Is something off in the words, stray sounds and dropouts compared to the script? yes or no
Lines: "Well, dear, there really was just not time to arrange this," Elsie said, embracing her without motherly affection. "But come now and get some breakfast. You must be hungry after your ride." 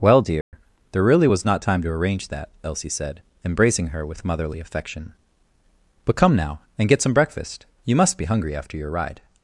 yes